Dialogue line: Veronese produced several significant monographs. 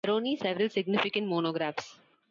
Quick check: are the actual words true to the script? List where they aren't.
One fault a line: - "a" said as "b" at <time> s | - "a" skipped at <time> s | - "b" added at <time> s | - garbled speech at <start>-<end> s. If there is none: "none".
- "produced" skipped at 0.4 s